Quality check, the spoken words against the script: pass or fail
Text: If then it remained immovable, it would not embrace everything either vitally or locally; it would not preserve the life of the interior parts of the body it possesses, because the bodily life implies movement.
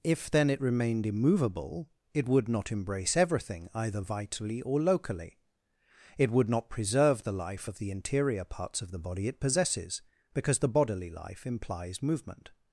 pass